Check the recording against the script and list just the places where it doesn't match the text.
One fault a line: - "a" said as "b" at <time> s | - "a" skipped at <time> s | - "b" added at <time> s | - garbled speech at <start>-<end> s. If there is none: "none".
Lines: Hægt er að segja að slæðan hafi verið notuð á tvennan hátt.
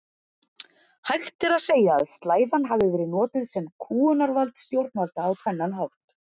- "sem kúgunarvald stjórnvalda" added at 3.6 s